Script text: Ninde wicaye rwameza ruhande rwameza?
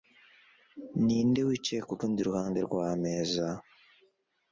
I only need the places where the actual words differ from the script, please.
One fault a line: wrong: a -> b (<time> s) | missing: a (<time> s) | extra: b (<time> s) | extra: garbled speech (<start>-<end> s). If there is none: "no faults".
wrong: rwameza -> kurundi (1.9 s)